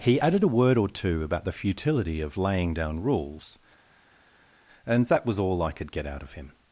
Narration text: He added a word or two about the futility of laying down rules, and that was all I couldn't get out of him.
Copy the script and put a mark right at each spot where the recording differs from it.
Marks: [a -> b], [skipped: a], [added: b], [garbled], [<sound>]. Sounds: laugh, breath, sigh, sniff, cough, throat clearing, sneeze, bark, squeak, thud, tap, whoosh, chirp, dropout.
He added a word or two about the futility of laying down rules, and that was all I [couldn't -> could] get out of him.